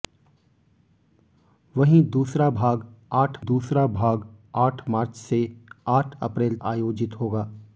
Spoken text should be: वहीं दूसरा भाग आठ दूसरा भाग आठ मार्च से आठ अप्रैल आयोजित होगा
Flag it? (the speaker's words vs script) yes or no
no